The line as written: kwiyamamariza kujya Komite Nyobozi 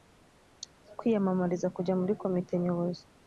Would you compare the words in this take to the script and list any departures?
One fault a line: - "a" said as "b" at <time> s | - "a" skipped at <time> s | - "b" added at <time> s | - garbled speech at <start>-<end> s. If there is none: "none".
- "muri" added at 2.0 s